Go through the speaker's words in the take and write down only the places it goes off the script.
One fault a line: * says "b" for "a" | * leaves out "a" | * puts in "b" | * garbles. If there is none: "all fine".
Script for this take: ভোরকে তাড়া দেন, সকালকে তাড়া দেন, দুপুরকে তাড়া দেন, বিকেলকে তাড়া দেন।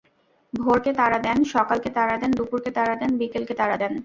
all fine